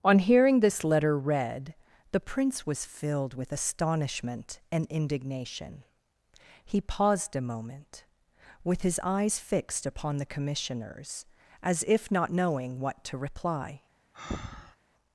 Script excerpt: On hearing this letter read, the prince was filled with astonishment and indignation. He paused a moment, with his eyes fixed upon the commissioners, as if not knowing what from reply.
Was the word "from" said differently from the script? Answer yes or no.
yes